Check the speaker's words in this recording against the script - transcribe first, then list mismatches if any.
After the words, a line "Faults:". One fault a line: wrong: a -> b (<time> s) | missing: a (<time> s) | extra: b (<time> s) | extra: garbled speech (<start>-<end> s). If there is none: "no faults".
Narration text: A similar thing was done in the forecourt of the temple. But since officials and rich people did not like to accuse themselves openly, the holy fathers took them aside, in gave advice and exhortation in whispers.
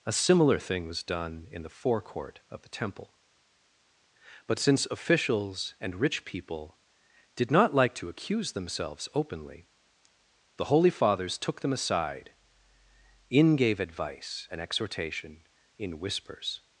A similar thing was done in the forecourt of the temple. But since officials and rich people did not like to accuse themselves openly, the holy fathers took them aside, in gave advice and exhortation in whispers.
Faults:
no faults